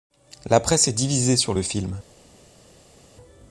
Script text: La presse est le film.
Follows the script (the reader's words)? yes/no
no